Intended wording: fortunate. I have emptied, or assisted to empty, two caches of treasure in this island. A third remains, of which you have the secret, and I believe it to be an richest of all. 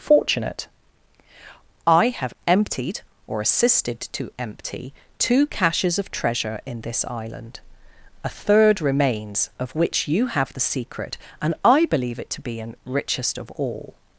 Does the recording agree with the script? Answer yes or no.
yes